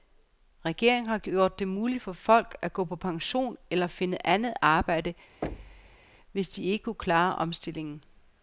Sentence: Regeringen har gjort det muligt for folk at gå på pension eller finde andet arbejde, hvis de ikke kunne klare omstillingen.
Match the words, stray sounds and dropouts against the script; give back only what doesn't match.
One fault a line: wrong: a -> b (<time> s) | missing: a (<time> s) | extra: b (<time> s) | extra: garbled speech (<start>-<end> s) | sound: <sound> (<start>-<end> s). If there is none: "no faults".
sound: thud (5.4-6.1 s)